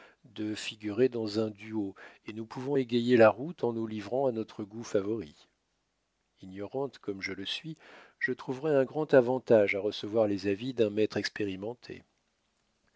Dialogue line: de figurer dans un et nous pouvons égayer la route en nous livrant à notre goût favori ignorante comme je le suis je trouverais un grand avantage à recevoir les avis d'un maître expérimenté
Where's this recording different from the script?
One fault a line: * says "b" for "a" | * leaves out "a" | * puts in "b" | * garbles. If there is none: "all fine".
* puts in "duo"